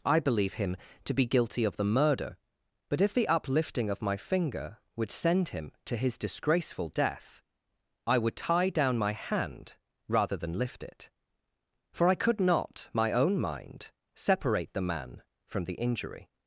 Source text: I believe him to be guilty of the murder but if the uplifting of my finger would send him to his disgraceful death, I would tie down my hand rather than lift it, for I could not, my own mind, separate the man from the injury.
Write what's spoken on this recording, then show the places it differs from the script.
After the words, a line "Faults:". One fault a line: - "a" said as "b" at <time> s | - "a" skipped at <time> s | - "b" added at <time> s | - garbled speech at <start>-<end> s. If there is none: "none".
I believe him to be guilty of the murder but if the uplifting of my finger would send him to his disgraceful death, I would tie down my hand rather than lift it, for I could not, my own mind, separate the man from the injury.
Faults:
none